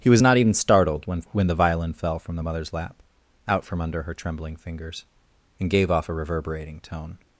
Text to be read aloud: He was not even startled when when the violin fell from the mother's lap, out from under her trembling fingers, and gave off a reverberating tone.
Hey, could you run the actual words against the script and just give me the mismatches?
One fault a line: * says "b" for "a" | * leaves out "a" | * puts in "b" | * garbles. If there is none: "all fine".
all fine